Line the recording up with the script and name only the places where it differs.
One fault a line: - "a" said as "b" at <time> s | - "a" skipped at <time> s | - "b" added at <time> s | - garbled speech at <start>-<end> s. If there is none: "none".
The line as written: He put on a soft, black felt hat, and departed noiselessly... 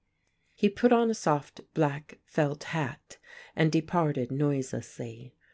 none